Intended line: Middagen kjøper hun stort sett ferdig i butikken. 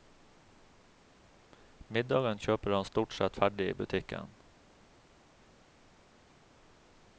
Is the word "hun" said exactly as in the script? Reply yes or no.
no